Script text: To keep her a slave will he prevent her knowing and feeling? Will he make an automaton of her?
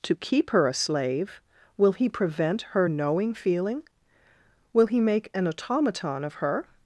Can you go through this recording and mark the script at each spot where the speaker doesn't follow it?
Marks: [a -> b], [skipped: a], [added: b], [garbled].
To keep her a slave will he prevent her knowing [skipped: and] feeling? Will he make an automaton of her?